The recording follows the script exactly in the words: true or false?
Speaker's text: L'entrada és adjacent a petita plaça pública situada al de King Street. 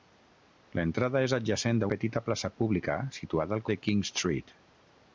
true